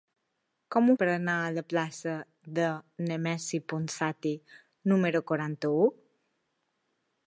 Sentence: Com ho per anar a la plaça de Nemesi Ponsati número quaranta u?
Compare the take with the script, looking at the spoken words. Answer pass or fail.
pass